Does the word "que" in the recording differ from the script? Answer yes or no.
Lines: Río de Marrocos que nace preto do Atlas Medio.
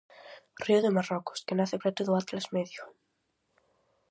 no